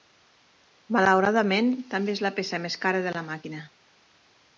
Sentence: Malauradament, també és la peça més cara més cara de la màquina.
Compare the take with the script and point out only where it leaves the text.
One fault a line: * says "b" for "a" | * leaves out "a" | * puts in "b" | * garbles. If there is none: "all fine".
* leaves out "més cara"